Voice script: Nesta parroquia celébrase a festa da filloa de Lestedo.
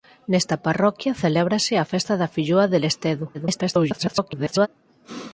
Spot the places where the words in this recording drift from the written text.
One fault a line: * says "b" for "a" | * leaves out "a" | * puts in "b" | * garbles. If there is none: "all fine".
* garbles